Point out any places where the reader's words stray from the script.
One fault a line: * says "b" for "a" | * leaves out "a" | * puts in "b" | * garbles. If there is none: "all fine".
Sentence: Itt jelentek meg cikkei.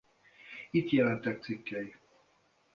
* leaves out "meg"